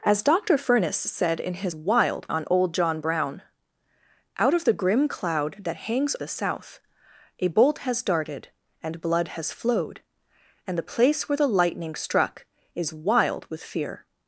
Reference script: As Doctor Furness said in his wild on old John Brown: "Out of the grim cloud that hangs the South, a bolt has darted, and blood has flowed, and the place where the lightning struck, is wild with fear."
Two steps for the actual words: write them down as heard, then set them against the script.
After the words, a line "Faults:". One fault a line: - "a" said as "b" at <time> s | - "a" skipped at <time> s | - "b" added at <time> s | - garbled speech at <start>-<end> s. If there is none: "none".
As Doctor Furness said in his wild on old John Brown: "Out of the grim cloud that hangs the South, a bolt has darted, and blood has flowed, and the place where the lightning struck, is wild with fear."
Faults:
none